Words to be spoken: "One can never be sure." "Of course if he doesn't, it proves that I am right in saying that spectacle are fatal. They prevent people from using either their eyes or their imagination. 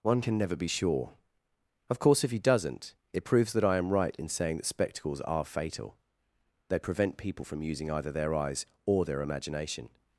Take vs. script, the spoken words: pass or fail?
fail